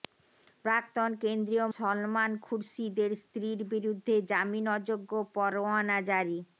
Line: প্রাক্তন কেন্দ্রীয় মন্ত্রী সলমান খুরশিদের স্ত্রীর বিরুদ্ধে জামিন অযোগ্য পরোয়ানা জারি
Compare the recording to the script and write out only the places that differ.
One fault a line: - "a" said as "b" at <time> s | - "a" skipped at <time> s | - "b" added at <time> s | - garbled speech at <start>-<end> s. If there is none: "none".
- "মন্ত্রী" skipped at 1.7 s